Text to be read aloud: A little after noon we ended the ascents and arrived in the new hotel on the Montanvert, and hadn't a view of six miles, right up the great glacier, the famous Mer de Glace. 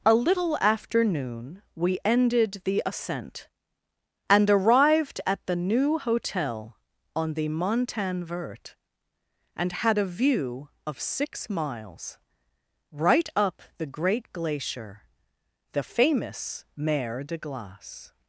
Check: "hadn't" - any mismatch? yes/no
yes